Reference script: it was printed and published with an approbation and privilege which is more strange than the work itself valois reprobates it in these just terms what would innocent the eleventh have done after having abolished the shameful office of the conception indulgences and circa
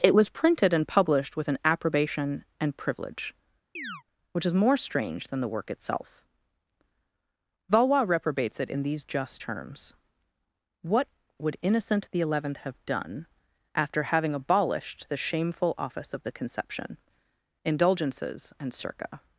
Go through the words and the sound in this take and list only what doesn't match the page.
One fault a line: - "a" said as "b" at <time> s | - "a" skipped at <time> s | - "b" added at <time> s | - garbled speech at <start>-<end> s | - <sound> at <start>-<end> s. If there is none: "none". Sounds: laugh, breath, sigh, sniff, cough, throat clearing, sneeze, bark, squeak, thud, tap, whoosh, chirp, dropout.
- chirp at 3.8-4.0 s